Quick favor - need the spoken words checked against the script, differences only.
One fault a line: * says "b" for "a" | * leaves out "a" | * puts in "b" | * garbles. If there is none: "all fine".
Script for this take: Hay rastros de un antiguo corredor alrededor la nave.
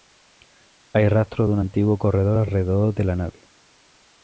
* puts in "de"